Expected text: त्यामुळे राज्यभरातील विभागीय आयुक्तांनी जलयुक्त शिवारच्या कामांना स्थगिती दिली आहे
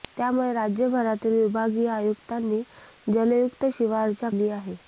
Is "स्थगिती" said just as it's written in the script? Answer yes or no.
no